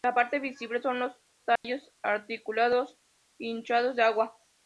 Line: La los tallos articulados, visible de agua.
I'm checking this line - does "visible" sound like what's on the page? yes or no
no